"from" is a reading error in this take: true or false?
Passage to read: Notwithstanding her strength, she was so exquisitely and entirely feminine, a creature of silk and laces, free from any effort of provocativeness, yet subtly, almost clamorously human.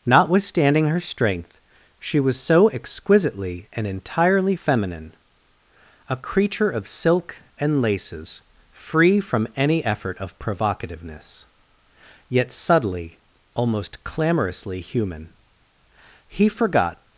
false